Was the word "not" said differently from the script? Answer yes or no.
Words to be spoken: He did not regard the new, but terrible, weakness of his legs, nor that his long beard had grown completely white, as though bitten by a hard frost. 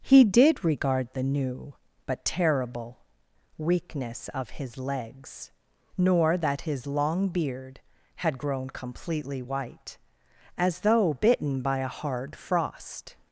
yes